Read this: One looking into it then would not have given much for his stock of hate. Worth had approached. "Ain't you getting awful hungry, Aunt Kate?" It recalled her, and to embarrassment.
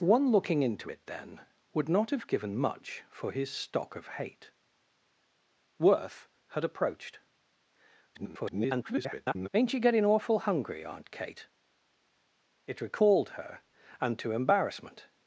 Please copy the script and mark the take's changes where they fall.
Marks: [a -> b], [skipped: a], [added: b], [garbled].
One looking into it then would not have given much for his stock of hate. Worth had approached. [garbled] "Ain't you getting awful hungry, Aunt Kate?" It recalled her, and to embarrassment.